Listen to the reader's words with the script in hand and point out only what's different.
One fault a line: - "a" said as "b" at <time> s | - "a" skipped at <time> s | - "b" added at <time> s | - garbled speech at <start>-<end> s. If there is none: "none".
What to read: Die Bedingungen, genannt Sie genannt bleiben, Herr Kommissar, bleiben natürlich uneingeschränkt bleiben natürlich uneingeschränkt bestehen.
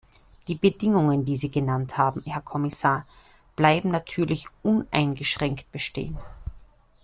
- "genannt" said as "die" at 1.2 s
- "bleiben" said as "haben" at 2.0 s
- "bleiben natürlich uneingeschränkt" skipped at 5.7 s